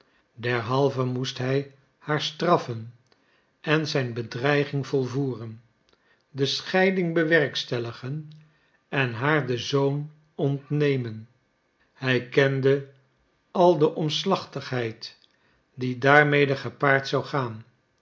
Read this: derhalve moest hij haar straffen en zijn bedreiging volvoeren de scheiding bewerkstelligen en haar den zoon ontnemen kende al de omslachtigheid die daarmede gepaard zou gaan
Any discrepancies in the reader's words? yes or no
yes